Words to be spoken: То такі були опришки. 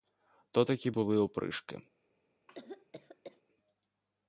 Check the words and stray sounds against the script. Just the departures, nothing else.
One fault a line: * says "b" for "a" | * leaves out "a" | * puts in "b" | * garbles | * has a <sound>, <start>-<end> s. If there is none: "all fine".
* has a cough, 2.5-3.4 s